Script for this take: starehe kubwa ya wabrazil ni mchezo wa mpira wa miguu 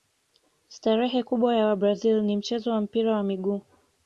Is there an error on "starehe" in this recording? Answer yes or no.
no